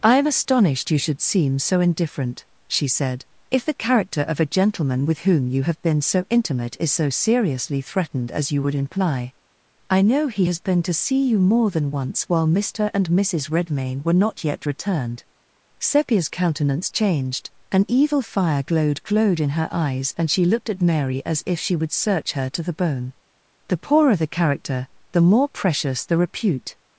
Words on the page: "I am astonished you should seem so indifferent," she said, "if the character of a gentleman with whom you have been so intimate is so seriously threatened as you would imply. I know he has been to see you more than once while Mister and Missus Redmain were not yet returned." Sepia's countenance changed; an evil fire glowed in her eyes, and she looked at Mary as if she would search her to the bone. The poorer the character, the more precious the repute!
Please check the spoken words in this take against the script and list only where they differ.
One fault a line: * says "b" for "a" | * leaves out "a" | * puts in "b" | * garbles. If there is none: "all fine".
* puts in "glowed"